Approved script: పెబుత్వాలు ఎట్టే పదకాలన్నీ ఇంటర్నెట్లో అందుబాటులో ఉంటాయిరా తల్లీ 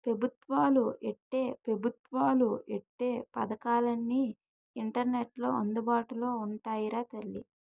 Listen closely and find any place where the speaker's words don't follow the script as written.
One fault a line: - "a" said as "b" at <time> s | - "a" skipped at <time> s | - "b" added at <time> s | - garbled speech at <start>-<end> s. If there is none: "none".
- "పెబుత్వాలు ఎట్టే" added at 1.7 s